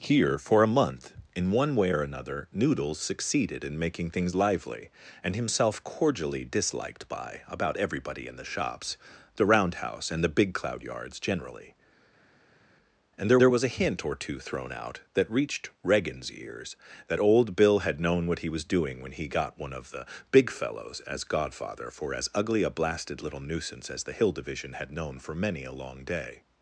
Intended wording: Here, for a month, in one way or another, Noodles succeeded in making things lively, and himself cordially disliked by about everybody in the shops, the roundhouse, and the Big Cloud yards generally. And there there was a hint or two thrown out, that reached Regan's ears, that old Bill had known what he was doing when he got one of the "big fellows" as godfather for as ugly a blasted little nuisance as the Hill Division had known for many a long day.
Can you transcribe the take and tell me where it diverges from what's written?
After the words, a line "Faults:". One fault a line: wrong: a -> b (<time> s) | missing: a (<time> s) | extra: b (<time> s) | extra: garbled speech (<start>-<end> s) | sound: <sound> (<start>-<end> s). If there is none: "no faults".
Here, for a month, in one way or another, Noodles succeeded in making things lively, and himself cordially disliked by about everybody in the shops, the roundhouse, and the Big Cloud yards generally. And there there was a hint or two thrown out, that reached Regan's ears, that old Bill had known what he was doing when he got one of the "big fellows" as godfather for as ugly a blasted little nuisance as the Hill Division had known for many a long day.
Faults:
no faults